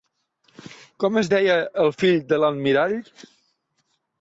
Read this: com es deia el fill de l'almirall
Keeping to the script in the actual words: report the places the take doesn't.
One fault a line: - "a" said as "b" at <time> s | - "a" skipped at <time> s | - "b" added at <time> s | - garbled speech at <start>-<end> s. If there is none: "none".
none